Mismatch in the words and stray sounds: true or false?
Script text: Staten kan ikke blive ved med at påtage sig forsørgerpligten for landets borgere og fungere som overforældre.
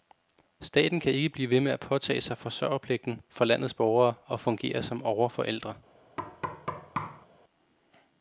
true